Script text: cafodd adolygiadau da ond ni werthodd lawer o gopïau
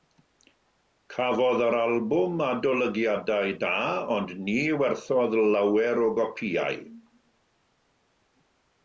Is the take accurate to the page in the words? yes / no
no